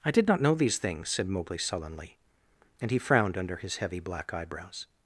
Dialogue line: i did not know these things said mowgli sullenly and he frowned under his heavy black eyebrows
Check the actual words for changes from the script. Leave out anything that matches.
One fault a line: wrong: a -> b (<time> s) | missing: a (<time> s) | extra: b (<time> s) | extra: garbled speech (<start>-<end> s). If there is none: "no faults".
no faults